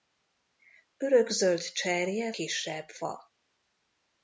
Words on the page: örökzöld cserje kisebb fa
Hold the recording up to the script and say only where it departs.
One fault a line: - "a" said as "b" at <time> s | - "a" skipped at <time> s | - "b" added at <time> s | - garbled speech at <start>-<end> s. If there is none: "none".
none